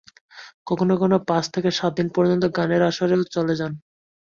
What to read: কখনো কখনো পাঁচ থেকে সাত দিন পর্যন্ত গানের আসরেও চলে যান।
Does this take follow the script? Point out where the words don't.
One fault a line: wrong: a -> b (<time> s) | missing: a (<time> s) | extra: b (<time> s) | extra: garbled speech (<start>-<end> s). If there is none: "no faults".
no faults